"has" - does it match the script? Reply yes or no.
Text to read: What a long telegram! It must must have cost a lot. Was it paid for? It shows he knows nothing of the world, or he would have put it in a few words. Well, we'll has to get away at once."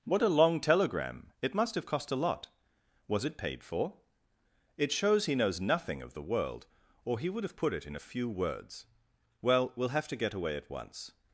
no